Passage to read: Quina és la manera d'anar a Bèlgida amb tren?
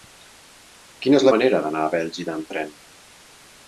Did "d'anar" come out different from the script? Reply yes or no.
no